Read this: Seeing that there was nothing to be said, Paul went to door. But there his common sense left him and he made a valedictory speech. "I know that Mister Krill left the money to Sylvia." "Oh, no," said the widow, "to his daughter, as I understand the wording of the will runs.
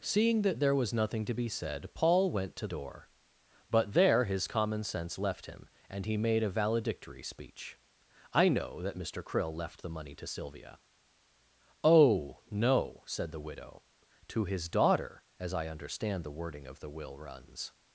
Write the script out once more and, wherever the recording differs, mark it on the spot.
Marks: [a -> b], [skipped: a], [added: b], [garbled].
Seeing that there was nothing to be said, Paul went to door. But there his common sense left him and he made a valedictory speech. "I know that Mister Krill left the money to Sylvia." "Oh, no," said the widow, "to his daughter, as I understand the wording of the will runs.